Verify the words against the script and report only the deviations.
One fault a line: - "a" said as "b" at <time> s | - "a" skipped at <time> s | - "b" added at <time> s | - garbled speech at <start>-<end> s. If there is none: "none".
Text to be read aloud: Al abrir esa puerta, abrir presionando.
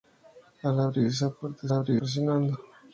none